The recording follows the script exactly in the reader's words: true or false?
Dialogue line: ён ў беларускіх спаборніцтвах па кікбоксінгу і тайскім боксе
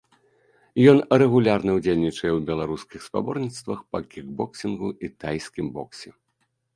false